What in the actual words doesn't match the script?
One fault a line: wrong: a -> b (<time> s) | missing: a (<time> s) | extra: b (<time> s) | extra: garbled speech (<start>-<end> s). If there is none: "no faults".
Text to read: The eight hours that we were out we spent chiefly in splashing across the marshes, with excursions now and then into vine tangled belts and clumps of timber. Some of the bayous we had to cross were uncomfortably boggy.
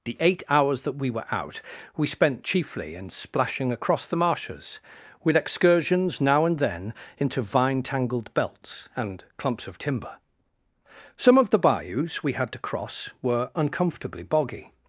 no faults